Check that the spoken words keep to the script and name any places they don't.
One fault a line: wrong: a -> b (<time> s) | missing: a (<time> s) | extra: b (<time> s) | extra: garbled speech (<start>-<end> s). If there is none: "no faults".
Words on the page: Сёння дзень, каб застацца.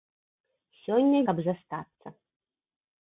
missing: дзень (1.2 s)